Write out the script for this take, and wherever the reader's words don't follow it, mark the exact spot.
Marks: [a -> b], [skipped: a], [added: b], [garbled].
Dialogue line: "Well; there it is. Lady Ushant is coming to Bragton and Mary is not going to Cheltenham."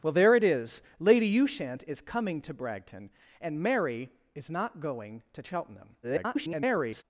"Well; there it is. Lady Ushant is coming to Bragton and Mary is not going to Cheltenham." [garbled]